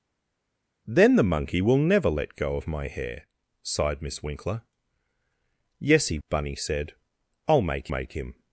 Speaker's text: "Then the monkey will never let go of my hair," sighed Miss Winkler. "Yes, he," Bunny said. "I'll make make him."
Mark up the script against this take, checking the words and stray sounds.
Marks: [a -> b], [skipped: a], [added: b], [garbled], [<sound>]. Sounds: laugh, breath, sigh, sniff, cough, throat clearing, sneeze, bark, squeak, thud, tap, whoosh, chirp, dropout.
"Then the monkey will never let go of my hair," sighed Miss Winkler. "Yes, he," Bunny said. "I'll make make him."